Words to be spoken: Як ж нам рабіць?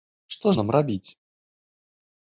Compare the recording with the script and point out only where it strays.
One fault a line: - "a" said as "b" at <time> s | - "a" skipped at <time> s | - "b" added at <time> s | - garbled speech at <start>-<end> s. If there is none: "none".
- "Як" said as "Што" at 0.3 s